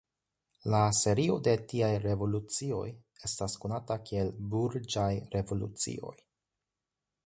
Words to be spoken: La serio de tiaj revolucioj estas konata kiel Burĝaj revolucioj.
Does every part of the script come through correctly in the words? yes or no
yes